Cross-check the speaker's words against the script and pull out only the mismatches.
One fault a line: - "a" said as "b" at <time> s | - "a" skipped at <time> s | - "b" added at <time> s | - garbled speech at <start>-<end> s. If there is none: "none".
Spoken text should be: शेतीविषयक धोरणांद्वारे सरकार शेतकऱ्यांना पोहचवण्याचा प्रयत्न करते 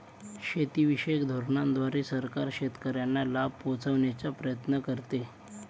- "लाभ" added at 3.2 s